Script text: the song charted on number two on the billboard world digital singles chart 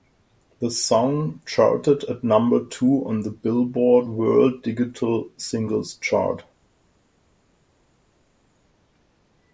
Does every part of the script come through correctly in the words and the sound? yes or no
no